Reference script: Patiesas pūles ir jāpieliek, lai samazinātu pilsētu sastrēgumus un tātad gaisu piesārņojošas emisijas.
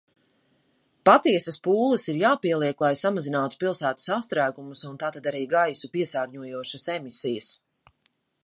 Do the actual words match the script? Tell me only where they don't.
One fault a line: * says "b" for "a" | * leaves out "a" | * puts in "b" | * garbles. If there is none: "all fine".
* puts in "arī"